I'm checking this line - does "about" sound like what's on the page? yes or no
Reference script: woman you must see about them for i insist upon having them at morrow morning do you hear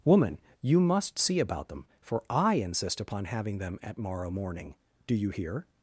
yes